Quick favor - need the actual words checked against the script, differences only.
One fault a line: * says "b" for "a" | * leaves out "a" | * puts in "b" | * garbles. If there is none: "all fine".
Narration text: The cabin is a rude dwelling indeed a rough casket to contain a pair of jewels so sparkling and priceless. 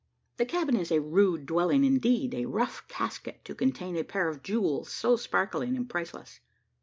all fine